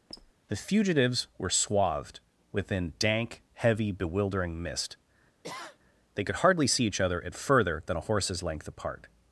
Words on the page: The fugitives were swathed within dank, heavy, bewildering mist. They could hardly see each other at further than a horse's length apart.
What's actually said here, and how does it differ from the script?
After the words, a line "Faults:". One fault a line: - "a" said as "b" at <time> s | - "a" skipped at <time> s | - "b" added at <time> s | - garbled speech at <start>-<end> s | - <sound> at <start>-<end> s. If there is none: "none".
The fugitives were swathed within dank, heavy, bewildering mist. They could hardly see each other at further than a horse's length apart.
Faults:
- squeak at 0.1-0.3 s
- sniff at 5.4-5.8 s